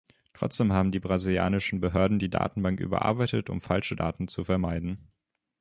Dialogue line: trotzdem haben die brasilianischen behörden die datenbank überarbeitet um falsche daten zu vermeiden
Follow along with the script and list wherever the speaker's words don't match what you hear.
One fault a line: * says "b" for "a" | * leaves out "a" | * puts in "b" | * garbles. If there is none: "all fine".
all fine